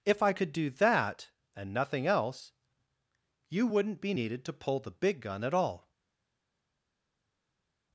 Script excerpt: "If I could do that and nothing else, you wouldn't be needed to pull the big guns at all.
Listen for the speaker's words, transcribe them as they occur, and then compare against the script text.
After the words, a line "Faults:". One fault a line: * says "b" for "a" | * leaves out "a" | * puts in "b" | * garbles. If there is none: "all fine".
"If I could do that and nothing else, you wouldn't be needed to pull the big gun at all.
Faults:
* says "gun" for "guns"